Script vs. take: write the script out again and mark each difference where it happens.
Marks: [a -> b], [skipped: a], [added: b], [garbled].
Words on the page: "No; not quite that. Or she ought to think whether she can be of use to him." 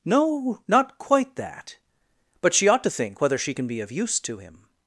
"No; not quite that. [Or -> But] she ought to think whether she can be of use to him."